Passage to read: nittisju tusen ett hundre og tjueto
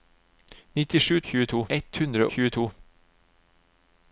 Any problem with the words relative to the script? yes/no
yes